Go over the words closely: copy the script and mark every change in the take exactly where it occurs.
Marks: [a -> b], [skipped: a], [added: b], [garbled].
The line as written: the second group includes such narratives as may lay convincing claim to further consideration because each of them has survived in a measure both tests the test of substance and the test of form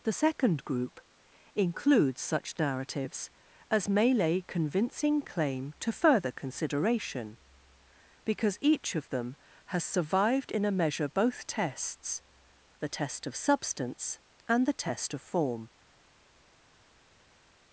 the second group includes such narratives as may lay convincing claim to further consideration because each of them has survived in a measure both tests the test of substance and the test of form